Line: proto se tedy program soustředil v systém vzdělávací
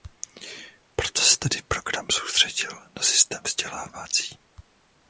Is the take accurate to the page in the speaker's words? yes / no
no